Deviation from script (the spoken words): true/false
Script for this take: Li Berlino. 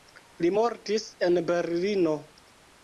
true